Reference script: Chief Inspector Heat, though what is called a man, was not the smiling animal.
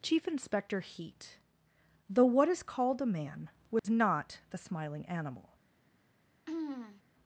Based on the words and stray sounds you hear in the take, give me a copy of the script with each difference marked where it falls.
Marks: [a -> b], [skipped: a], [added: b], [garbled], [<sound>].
Chief Inspector Heat, though what is called a man, was [dropout] not the smiling animal. [throat clearing]